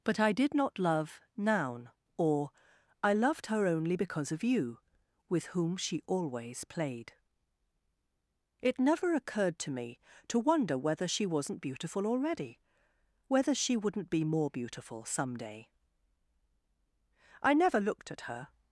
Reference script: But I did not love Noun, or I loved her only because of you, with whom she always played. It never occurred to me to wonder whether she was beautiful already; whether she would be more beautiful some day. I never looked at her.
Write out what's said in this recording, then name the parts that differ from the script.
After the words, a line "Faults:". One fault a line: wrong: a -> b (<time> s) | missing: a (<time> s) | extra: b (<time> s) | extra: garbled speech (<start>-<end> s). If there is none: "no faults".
But I did not love Noun, or I loved her only because of you, with whom she always played. It never occurred to me to wonder whether she wasn't beautiful already; whether she wouldn't be more beautiful some day. I never looked at her.
Faults:
wrong: was -> wasn't (11.3 s)
wrong: would -> wouldn't (13.8 s)